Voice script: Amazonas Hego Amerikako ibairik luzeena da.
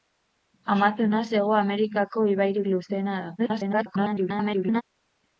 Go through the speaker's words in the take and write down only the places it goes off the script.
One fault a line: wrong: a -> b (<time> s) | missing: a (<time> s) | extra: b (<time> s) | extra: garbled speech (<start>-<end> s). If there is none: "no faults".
extra: garbled speech (3.4-4.8 s)